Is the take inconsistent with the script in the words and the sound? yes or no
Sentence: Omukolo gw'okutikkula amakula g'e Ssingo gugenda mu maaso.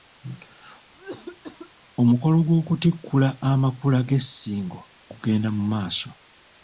yes